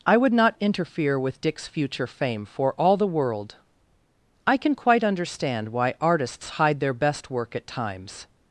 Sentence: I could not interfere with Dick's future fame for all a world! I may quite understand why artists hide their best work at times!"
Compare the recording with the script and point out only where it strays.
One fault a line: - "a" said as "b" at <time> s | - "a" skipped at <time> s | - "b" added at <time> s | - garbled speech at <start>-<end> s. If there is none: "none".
- "could" said as "would" at 0.2 s
- "a" said as "the" at 3.0 s
- "may" said as "can" at 4.6 s